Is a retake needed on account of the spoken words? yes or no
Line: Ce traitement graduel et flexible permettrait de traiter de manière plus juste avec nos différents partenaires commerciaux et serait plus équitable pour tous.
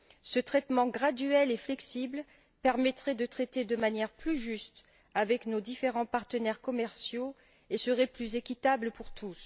no